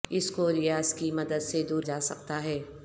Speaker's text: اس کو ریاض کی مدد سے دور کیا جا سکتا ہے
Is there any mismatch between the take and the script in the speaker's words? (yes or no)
yes